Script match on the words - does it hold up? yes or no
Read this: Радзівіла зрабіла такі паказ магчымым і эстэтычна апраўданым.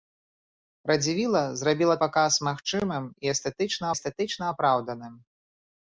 no